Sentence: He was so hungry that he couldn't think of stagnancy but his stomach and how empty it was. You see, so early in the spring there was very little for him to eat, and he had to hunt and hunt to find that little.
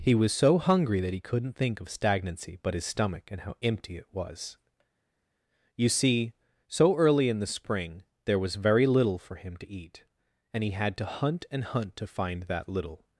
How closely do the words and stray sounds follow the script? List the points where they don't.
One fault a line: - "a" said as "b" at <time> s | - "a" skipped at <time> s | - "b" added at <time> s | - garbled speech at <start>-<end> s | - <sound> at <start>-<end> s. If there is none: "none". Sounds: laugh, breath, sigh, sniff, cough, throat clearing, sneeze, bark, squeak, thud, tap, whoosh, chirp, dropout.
none